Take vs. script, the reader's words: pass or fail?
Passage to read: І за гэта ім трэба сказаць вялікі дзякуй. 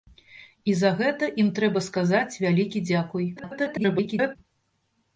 fail